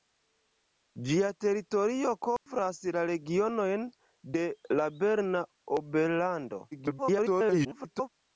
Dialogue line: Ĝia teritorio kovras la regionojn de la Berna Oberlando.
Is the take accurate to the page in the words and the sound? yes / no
no